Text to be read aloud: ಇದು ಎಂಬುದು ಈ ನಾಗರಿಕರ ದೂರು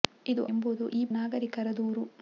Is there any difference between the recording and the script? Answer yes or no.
no